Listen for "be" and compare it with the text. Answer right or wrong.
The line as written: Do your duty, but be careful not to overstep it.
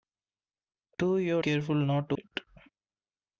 wrong